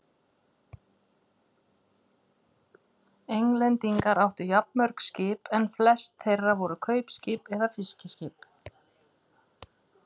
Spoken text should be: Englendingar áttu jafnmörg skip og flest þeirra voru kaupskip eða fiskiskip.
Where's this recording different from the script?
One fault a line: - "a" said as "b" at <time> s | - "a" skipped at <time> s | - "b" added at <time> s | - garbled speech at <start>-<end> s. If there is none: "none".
- "og" said as "en" at 5.6 s